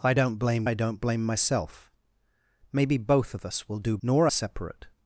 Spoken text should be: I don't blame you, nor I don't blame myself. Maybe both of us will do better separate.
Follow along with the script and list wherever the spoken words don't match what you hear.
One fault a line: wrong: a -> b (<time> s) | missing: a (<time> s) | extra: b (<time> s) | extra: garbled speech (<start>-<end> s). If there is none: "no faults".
missing: you nor (0.7 s)
wrong: better -> nor (4.0 s)